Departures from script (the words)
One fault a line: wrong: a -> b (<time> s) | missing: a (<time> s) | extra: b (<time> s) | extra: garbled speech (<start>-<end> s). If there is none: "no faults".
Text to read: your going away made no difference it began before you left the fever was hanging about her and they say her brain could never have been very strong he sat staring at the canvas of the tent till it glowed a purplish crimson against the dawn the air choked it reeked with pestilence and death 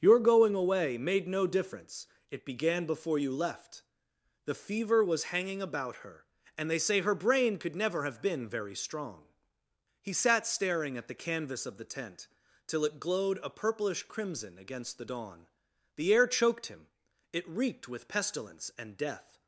extra: him (16.7 s)